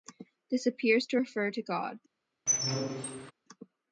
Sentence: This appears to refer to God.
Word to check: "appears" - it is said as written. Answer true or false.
true